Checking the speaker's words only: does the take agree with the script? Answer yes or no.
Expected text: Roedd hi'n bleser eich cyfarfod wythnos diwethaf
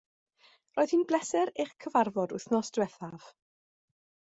yes